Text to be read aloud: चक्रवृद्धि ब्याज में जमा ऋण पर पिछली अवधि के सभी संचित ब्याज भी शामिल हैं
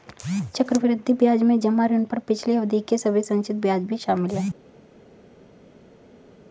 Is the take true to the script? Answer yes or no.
yes